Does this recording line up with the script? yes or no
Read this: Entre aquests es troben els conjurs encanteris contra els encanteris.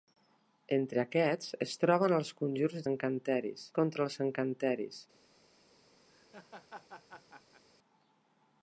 yes